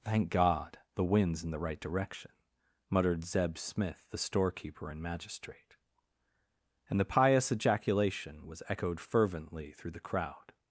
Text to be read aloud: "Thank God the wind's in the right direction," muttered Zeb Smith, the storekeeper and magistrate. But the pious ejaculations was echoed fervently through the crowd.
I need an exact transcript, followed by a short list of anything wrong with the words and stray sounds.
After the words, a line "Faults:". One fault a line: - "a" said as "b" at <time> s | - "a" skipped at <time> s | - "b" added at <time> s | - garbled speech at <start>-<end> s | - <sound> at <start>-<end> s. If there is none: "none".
"Thank God the wind's in the right direction," muttered Zeb Smith, the storekeeper and magistrate. And the pious ejaculation was echoed fervently through the crowd.
Faults:
- "But" said as "And" at 6.9 s
- "ejaculations" said as "ejaculation" at 7.5 s